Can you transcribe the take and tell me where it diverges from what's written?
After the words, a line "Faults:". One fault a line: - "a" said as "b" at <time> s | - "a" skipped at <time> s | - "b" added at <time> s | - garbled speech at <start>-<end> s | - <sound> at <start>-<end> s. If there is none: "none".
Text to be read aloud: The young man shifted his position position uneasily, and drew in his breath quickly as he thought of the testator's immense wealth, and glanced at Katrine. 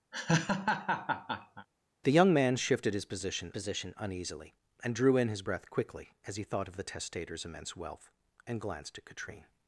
The young man shifted his position position uneasily, and drew in his breath quickly as he thought of the testator's immense wealth, and glanced at Katrine.
Faults:
- laugh at 0.1-1.7 s